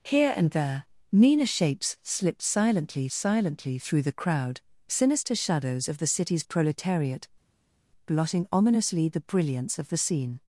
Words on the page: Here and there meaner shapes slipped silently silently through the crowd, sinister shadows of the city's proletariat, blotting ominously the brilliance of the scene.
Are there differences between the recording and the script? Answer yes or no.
no